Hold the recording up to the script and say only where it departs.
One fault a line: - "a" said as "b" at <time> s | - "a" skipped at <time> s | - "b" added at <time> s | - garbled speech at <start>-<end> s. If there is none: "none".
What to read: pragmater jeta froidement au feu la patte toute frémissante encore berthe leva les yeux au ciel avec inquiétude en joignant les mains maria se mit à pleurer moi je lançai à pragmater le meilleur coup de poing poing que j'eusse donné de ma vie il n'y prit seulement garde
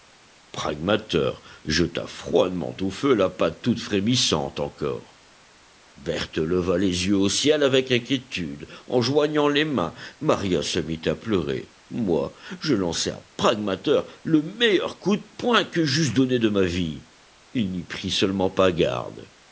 - "poing" skipped at 15.6 s
- "pas" added at 18.5 s